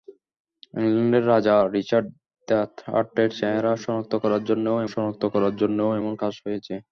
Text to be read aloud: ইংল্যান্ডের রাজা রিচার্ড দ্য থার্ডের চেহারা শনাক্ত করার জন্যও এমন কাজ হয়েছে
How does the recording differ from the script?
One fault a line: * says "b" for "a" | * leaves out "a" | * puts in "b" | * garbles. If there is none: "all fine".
* puts in "শনাক্ত করার জন্যও"